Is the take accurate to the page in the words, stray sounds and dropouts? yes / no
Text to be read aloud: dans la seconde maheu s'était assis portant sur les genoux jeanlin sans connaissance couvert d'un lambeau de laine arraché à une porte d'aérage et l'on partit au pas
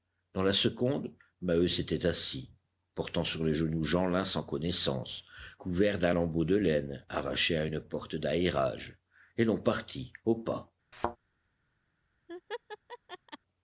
no